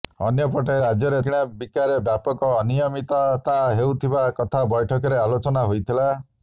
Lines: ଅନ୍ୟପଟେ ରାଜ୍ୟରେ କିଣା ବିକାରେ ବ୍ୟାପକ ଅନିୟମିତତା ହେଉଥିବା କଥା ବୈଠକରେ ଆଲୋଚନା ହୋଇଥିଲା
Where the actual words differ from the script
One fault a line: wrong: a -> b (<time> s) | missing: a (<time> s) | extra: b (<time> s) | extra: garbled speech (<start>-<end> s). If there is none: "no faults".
no faults